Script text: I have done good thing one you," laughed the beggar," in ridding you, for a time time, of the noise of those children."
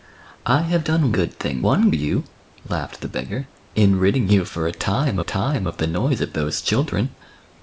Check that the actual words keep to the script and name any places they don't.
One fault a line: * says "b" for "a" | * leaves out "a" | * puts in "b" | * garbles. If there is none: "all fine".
all fine